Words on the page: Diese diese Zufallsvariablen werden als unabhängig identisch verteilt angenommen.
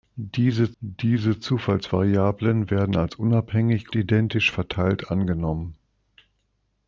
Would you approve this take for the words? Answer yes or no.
yes